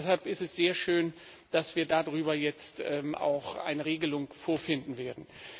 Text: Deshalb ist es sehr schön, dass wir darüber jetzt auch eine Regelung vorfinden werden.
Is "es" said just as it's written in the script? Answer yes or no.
yes